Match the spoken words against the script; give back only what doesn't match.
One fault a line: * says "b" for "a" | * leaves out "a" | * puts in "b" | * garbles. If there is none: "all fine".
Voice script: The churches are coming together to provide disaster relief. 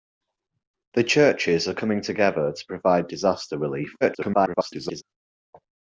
* garbles